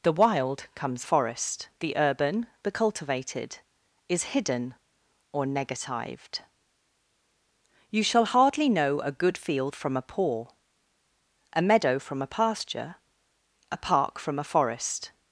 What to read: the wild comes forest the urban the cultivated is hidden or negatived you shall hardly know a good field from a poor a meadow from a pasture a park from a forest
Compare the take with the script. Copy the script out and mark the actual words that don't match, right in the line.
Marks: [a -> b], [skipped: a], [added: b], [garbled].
the wild comes forest the urban the cultivated is hidden or negatived you shall hardly know a good field from a poor a meadow from a pasture a park from a forest